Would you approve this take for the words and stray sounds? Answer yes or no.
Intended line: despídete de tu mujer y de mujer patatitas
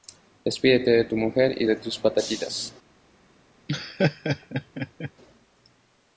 no